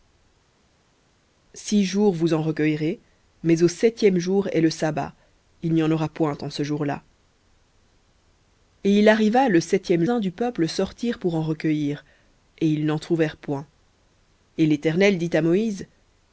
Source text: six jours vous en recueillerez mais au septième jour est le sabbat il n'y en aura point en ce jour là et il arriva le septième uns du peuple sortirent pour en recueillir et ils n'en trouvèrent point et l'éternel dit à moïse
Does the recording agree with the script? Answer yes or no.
yes